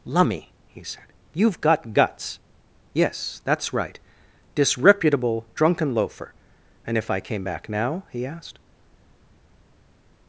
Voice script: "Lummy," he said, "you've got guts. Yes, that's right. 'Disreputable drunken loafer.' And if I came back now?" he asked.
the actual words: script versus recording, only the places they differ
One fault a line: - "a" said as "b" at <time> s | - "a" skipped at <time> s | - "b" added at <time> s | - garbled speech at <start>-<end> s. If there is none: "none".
none